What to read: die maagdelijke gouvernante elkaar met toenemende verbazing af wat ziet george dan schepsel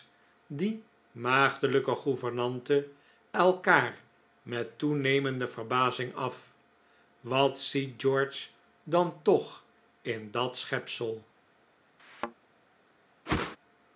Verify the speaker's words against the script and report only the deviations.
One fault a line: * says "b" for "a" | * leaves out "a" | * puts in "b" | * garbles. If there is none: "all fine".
* puts in "toch in dat"